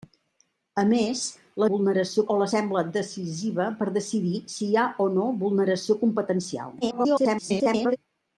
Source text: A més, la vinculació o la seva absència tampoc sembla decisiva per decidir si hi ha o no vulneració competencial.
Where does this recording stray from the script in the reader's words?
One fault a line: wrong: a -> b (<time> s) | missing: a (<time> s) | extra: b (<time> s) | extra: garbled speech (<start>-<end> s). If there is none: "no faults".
wrong: vinculació -> vulneració (1.7 s)
missing: seva absència tampoc (2.5 s)
extra: garbled speech (6.8-8.0 s)